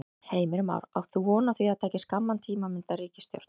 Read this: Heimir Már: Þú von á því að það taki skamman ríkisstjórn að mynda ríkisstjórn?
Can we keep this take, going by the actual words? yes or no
no